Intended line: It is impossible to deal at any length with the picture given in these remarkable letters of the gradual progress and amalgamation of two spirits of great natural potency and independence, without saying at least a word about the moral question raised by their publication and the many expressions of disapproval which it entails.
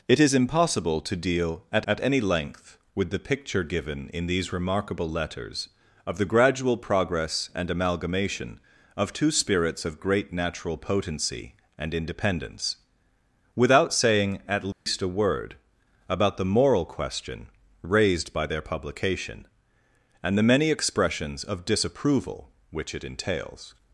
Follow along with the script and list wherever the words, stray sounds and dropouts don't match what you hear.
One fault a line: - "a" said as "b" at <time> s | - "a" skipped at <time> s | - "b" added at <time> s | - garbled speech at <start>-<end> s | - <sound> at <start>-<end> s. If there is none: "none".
- "at" added at 1.9 s
- dropout at 14.7-14.9 s